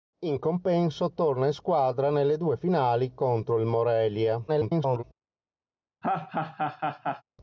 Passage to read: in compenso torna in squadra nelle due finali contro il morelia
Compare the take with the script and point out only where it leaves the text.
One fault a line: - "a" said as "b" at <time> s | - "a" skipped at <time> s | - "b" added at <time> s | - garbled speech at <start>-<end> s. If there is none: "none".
- garbled speech at 4.5-5.0 s